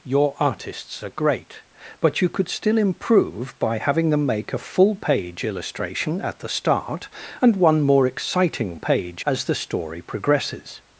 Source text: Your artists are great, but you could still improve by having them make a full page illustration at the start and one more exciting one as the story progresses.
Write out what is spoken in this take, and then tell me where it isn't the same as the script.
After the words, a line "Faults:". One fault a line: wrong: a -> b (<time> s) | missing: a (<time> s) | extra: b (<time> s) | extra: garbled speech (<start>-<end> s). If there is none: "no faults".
Your artists are great, but you could still improve by having them make a full page illustration at the start and one more exciting page as the story progresses.
Faults:
wrong: one -> page (8.8 s)